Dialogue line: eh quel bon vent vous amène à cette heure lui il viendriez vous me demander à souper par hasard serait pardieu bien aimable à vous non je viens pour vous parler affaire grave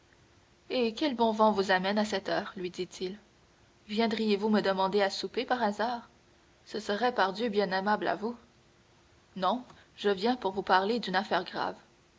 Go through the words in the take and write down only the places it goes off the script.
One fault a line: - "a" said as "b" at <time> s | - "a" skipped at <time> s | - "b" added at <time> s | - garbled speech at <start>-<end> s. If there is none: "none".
- "dit" added at 2.7 s
- "ce" added at 6.7 s
- "d'une" added at 11.0 s